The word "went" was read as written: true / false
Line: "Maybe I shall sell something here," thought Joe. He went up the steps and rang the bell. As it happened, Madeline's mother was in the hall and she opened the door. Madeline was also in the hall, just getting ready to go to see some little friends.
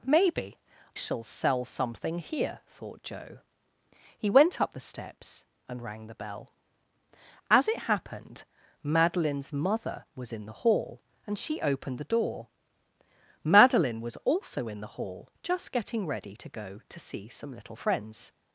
true